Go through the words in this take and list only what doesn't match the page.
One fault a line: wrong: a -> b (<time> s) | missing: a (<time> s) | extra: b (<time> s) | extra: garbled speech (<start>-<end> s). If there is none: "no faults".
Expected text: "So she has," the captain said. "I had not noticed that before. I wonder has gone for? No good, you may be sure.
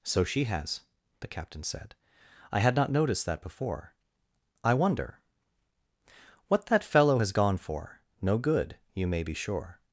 extra: what that fellow (6.5 s)